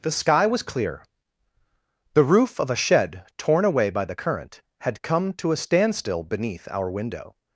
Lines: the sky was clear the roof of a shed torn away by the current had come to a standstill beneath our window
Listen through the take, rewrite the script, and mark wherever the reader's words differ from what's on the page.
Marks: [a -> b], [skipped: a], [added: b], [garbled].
the sky was clear the roof of a shed torn away by the current had come to a standstill beneath our window